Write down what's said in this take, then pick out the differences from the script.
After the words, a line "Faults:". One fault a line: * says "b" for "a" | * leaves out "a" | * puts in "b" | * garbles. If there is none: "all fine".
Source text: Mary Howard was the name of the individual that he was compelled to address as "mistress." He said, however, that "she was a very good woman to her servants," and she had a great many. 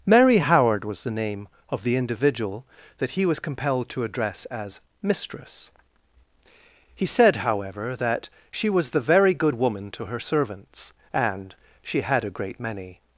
Mary Howard was the name of the individual that he was compelled to address as "mistress." He said, however, that "she was the very good woman to her servants," and she had a great many.
Faults:
* says "the" for "a"